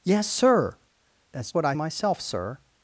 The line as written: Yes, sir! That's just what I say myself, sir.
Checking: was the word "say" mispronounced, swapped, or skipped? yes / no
yes